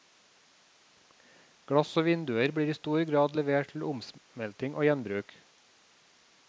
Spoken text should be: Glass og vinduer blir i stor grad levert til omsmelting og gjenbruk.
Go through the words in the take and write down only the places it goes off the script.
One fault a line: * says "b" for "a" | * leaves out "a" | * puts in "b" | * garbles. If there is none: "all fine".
all fine